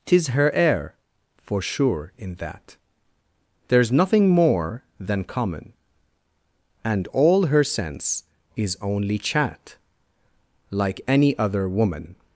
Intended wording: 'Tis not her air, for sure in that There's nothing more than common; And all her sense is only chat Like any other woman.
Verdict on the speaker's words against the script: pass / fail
fail